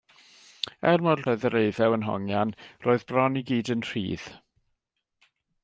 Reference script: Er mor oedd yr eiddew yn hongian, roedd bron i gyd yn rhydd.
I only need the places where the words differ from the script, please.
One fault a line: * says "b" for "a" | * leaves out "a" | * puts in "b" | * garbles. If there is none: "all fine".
all fine